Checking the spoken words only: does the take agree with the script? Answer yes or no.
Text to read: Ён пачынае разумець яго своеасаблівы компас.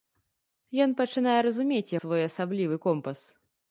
no